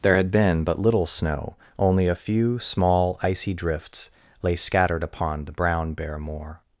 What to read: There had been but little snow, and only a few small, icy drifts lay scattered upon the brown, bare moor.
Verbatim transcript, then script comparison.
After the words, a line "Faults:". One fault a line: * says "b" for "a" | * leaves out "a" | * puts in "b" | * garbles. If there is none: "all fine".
There had been but little snow, only a few small, icy drifts lay scattered upon the brown, bare moor.
Faults:
* leaves out "and"